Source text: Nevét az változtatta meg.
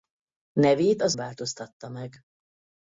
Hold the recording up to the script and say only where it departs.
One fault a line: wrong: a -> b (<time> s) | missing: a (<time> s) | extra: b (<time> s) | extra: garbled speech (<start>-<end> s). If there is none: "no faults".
no faults